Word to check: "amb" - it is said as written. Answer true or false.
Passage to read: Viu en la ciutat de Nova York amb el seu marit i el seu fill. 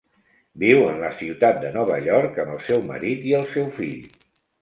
true